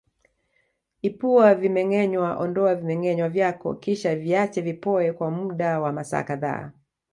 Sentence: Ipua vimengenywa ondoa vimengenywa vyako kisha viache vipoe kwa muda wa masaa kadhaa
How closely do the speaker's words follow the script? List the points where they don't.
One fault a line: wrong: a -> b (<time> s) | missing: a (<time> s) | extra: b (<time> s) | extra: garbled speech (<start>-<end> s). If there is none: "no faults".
no faults